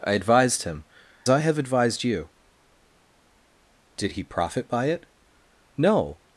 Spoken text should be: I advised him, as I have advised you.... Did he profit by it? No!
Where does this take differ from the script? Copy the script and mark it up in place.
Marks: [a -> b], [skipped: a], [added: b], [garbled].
I advised him, [skipped: as] I have advised you.... Did he profit by it? No!